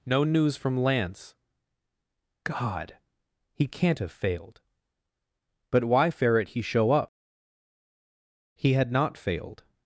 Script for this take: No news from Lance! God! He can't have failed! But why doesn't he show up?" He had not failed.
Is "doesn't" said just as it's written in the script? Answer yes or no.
no